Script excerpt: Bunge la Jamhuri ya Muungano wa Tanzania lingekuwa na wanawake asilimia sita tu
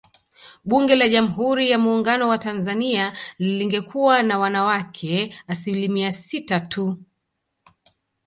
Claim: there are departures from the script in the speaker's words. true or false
false